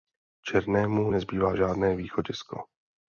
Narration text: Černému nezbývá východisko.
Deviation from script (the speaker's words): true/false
true